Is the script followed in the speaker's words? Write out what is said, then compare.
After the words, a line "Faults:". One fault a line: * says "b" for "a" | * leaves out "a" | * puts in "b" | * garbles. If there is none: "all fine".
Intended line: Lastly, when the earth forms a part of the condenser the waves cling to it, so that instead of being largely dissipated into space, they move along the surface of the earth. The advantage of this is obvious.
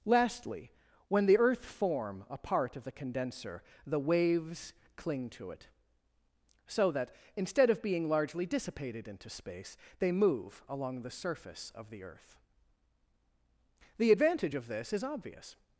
Lastly, when the earth form a part of the condenser the waves cling to it, so that instead of being largely dissipated into space, they move along the surface of the earth. The advantage of this is obvious.
Faults:
* says "form" for "forms"